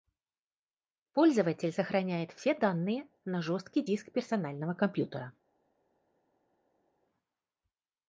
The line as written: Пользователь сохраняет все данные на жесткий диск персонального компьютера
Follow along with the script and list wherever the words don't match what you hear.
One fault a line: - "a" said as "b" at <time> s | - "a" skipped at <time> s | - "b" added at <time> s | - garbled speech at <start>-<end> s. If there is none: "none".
none